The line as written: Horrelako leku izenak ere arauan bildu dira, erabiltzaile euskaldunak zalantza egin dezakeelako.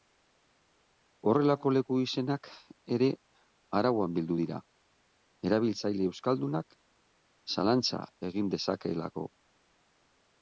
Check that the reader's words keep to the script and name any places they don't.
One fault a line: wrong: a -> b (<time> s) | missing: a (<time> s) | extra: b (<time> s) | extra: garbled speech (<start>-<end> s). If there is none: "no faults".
no faults